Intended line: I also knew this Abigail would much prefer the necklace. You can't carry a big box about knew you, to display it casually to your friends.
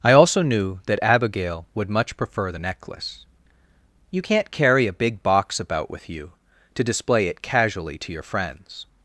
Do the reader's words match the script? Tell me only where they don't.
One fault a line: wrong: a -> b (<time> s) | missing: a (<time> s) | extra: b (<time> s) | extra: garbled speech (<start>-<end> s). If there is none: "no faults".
wrong: this -> that (0.9 s)
wrong: knew -> with (5.9 s)